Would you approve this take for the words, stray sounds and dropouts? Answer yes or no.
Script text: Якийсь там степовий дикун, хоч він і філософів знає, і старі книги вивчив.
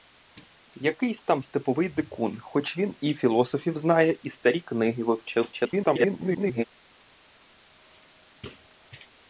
no